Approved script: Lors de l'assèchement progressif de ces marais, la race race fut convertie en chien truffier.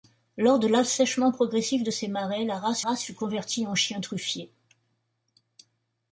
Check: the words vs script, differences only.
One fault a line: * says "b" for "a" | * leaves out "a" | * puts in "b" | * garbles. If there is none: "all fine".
all fine